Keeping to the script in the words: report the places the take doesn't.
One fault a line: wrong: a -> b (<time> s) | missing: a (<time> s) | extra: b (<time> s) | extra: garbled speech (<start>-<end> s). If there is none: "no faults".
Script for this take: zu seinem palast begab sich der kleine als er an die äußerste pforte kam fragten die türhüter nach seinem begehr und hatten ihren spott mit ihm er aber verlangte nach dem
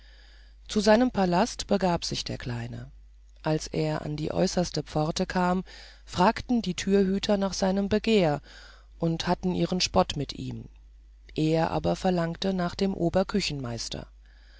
no faults